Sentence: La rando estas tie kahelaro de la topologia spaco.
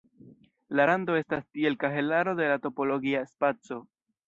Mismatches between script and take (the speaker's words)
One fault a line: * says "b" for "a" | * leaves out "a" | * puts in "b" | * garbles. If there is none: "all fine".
* says "tiel" for "tie"